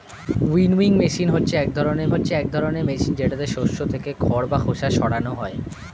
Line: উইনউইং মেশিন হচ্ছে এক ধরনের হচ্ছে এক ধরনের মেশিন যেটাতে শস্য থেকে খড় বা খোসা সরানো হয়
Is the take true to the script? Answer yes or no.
yes